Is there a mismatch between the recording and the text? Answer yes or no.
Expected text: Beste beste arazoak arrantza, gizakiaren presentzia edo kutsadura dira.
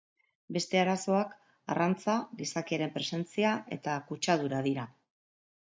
yes